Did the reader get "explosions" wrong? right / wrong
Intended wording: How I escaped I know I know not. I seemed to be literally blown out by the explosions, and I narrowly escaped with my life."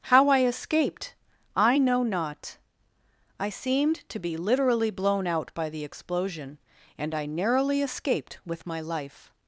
wrong